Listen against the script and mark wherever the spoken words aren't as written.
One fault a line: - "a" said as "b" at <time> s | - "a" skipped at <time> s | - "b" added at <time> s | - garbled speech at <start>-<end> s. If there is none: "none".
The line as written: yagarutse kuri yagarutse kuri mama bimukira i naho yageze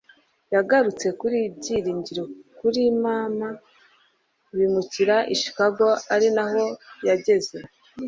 - "yagarutse" said as "byiringiro" at 1.6 s
- "chicago ari" added at 5.4 s